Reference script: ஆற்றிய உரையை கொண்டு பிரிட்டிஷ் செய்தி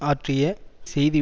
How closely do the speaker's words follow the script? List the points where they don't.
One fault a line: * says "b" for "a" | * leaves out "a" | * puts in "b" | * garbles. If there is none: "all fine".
* leaves out "உரையை கொண்டு பிரிட்டிஷ்"